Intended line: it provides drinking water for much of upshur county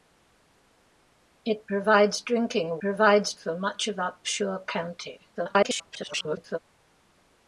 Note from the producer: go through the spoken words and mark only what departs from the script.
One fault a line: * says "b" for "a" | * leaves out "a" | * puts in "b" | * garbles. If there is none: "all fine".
* says "provides" for "water"
* garbles